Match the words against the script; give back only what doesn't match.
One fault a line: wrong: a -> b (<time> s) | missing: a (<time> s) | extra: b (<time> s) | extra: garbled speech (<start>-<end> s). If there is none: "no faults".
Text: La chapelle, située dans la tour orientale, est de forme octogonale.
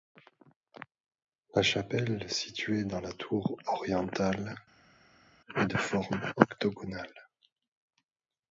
no faults